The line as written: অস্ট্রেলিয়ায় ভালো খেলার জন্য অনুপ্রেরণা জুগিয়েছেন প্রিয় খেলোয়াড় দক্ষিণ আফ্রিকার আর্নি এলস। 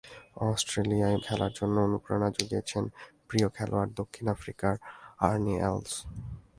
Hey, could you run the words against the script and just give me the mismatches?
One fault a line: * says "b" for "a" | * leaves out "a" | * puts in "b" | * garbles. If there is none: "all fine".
* leaves out "ভালো"